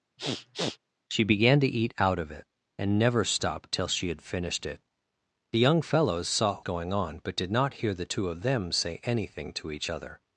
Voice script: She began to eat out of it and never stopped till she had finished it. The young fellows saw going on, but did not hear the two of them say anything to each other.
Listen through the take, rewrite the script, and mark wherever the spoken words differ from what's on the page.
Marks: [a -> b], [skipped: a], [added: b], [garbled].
She began to eat out of it and never stopped till she had finished it. The young fellows saw going on, but did not hear the two of them say anything to each other.